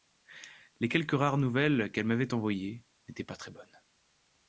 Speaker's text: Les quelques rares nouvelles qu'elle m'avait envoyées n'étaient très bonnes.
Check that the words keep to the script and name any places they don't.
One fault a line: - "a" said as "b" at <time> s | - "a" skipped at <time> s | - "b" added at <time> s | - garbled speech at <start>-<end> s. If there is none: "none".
- "pas" added at 3.2 s